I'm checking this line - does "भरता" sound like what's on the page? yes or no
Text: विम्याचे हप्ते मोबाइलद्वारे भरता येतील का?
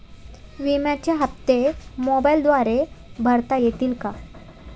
yes